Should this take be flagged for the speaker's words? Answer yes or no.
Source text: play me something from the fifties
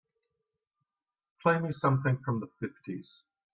no